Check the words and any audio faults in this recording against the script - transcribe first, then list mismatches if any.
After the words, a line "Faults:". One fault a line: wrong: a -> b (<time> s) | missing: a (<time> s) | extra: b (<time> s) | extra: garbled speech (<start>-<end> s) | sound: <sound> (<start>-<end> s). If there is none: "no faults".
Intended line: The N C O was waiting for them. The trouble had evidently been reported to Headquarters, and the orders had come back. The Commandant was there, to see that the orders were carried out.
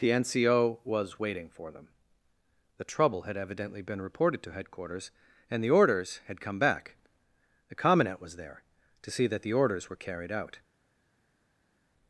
The N C O was waiting for them. The trouble had evidently been reported to Headquarters, and the orders had come back. The Commandant was there, to see that the orders were carried out.
Faults:
no faults